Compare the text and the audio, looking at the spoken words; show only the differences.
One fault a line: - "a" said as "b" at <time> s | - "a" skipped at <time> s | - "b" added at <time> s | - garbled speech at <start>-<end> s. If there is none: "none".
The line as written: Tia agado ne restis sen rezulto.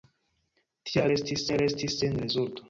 - "agado" said as "restis" at 1.1 s